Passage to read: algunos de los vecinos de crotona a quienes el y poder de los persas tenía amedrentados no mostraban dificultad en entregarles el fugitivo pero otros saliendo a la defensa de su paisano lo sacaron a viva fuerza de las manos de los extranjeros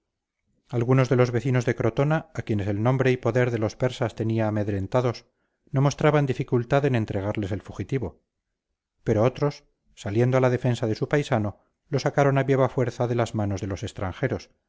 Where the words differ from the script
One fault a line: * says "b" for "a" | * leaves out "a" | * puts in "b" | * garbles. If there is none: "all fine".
* puts in "nombre"